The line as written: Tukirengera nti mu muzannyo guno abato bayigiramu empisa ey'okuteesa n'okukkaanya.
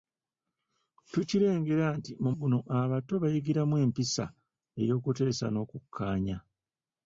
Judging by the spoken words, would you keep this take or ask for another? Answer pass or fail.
fail